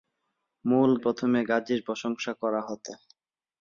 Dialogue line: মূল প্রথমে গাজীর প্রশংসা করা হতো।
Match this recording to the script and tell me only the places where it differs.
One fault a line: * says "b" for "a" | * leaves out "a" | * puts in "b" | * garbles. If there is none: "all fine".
all fine